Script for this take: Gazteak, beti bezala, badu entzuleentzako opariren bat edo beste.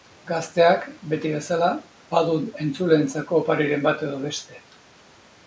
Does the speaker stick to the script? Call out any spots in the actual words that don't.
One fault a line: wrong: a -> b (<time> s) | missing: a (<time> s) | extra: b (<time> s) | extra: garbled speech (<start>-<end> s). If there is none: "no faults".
no faults